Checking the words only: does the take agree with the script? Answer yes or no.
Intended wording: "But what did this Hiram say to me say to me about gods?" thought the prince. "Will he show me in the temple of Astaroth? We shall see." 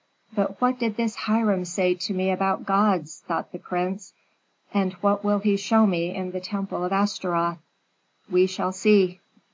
no